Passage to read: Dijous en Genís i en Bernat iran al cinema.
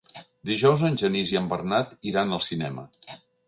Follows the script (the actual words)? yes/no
yes